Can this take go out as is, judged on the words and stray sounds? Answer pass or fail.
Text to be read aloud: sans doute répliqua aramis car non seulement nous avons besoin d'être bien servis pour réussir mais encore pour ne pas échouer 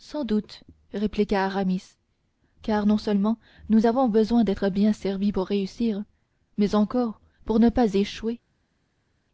pass